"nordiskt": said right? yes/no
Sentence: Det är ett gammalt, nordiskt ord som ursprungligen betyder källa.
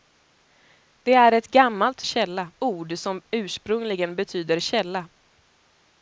no